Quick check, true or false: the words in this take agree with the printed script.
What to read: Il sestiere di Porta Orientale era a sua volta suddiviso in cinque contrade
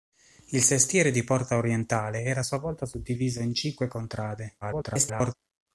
false